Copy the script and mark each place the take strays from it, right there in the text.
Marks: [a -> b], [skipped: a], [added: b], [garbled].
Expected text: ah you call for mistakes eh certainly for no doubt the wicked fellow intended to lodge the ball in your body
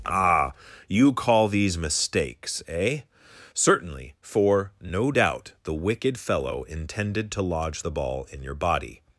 ah you call [for -> these] mistakes eh certainly for no doubt the wicked fellow intended to lodge the ball in your body